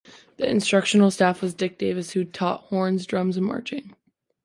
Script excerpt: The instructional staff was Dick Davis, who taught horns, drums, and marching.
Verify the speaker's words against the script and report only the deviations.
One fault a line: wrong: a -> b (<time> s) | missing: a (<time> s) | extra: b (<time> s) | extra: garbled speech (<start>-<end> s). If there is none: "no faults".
no faults